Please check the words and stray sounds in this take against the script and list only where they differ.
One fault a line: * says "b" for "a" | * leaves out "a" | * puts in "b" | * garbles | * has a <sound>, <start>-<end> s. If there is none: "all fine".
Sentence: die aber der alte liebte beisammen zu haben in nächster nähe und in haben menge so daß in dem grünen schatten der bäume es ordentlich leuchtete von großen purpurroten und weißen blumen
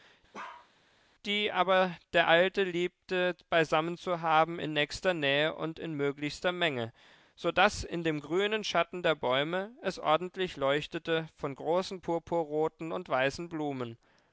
* has a bark, 0.3-0.7 s
* says "möglichster" for "haben"